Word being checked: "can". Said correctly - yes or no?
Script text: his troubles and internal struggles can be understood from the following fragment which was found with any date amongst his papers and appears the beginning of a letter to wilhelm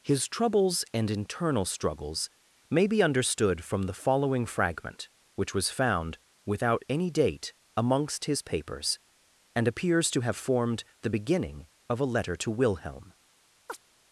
no